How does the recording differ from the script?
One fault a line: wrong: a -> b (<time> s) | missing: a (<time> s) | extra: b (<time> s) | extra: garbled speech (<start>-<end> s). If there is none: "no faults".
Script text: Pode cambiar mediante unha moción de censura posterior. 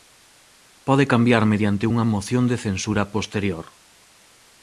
no faults